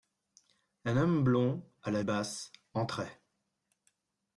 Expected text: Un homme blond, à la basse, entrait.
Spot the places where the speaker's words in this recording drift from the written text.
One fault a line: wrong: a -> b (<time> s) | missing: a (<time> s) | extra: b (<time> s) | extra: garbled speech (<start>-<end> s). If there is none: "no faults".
no faults